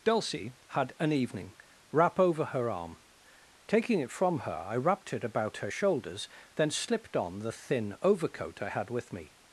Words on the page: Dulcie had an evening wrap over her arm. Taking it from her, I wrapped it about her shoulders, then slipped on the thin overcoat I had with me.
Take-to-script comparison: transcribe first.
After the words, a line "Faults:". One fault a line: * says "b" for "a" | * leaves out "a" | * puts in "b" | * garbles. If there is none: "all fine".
Dulcie had an evening wrap over her arm. Taking it from her, I wrapped it about her shoulders, then slipped on the thin overcoat I had with me.
Faults:
all fine